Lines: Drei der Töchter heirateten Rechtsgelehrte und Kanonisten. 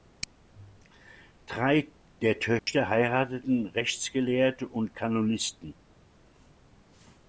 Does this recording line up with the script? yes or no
yes